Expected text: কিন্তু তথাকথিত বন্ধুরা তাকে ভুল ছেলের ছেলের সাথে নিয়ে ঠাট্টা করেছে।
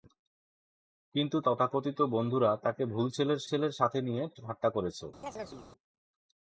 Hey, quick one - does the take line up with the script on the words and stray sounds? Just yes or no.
no